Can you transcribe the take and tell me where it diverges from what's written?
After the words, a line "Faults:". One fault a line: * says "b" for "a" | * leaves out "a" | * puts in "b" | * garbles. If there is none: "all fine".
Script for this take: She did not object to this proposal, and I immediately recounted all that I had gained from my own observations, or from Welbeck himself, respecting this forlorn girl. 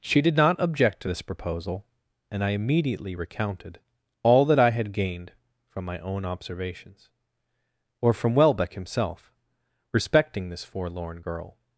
She did not object to this proposal, and I immediately recounted all that I had gained from my own observations, or from Welbeck himself, respecting this forlorn girl.
Faults:
all fine